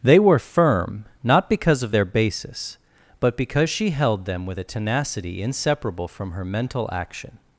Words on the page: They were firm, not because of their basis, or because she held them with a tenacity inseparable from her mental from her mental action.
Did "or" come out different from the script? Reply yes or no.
yes